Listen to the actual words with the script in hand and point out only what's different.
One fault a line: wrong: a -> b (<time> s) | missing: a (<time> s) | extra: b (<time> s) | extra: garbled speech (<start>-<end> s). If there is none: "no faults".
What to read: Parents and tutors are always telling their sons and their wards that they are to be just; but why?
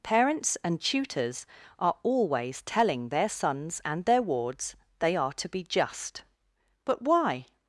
missing: that (4.8 s)